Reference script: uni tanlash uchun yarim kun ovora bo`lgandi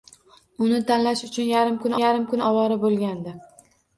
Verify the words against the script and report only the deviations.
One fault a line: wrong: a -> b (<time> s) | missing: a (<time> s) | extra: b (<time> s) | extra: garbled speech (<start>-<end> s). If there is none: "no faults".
extra: yarim kun (2.0 s)